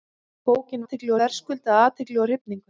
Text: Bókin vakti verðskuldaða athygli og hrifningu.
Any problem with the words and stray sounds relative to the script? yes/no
yes